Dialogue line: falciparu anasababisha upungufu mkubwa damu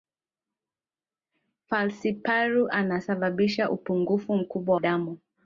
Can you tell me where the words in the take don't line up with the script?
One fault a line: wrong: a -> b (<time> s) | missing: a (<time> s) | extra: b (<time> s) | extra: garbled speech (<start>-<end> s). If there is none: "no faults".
no faults